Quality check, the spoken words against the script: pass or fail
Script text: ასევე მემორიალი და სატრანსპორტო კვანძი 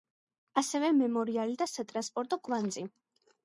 pass